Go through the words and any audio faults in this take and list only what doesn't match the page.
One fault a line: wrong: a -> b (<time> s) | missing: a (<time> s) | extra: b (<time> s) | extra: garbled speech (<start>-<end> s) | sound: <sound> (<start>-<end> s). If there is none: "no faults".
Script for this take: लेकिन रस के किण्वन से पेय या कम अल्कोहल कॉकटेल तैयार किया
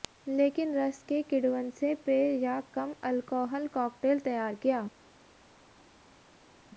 no faults